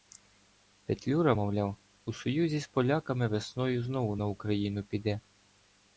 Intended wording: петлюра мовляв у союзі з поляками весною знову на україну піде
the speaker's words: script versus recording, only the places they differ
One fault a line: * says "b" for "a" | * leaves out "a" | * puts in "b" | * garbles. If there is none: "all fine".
all fine